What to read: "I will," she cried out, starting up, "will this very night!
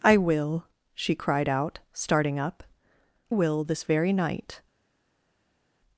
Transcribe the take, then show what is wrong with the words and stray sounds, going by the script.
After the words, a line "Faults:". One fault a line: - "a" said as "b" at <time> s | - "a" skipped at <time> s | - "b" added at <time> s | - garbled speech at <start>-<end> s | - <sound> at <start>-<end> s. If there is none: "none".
"I will," she cried out, starting up, "will this very night!
Faults:
none